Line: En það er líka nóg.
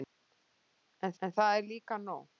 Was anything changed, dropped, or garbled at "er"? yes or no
no